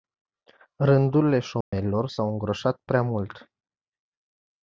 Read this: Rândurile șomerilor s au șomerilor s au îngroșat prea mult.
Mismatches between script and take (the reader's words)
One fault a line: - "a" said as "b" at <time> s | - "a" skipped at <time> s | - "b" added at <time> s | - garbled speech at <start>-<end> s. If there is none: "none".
- "șomerilor s au" skipped at 2.3 s